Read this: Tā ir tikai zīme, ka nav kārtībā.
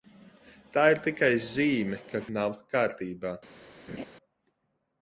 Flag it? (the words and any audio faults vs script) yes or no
yes